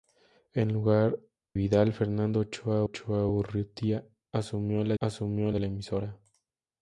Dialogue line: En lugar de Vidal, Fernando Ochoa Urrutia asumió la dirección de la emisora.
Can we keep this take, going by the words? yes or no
no